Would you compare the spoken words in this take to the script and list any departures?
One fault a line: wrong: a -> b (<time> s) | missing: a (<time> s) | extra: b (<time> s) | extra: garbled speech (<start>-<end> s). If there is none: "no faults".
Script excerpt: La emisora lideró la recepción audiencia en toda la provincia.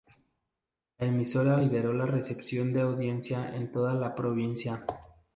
extra: de (2.7 s)